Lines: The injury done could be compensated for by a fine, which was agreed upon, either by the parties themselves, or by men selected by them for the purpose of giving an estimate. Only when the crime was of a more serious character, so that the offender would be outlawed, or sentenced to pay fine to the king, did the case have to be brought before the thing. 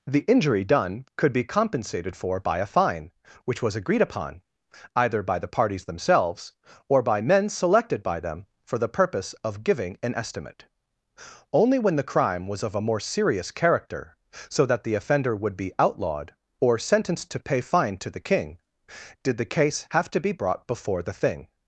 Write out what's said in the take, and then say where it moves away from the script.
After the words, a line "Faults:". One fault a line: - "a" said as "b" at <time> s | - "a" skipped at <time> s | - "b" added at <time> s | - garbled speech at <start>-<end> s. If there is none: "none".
The injury done could be compensated for by a fine, which was agreed upon, either by the parties themselves, or by men selected by them for the purpose of giving an estimate. Only when the crime was of a more serious character, so that the offender would be outlawed, or sentenced to pay fine to the king, did the case have to be brought before the thing.
Faults:
none